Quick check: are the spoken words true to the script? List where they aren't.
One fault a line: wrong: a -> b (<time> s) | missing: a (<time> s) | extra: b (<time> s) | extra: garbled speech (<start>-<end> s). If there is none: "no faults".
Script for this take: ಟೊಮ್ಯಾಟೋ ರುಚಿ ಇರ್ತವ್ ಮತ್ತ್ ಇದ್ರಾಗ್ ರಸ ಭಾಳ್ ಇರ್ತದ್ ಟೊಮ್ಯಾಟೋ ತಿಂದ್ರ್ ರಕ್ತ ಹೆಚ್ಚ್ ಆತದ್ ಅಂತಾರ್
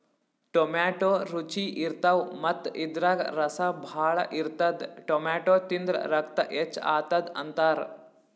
no faults